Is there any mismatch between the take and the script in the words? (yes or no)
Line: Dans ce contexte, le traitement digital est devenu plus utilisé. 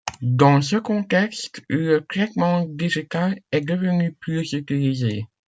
no